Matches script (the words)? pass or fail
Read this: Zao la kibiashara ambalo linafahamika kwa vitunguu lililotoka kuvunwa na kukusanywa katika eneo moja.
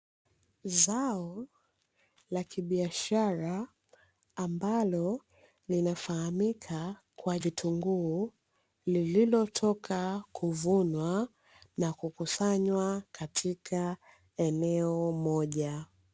pass